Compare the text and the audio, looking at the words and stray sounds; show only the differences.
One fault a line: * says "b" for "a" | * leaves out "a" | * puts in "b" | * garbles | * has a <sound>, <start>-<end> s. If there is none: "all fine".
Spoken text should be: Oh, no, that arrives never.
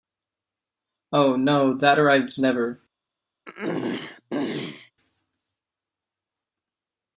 * has a throat clearing, 3.5-4.9 s